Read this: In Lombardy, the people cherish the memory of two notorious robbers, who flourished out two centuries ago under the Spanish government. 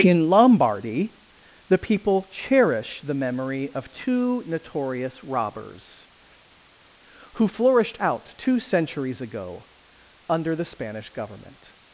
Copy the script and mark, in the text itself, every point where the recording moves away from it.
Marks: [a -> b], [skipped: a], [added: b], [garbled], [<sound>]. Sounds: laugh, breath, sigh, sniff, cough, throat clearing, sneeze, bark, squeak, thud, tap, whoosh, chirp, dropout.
In Lombardy, the people cherish the memory of two notorious robbers, who flourished out two centuries ago under the Spanish government.